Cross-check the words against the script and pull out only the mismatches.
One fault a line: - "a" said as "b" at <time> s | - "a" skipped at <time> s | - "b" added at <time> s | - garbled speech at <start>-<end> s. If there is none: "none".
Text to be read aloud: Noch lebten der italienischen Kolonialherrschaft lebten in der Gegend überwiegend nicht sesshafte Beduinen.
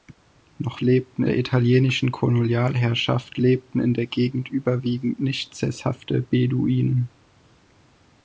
none